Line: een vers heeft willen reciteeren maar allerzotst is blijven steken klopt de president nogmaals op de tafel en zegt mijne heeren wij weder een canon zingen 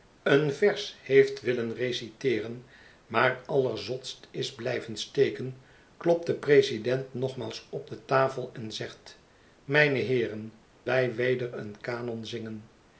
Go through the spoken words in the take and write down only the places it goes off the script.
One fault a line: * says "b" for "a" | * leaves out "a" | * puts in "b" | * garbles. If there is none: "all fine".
all fine